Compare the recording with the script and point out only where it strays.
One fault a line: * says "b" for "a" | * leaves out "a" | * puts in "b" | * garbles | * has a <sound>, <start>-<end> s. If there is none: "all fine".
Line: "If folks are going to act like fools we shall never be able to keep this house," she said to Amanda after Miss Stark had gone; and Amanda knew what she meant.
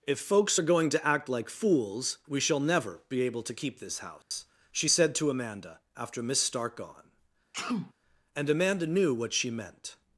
* has a dropout, 4.2-4.3 s
* leaves out "had"
* has a sneeze, 7.5-7.9 s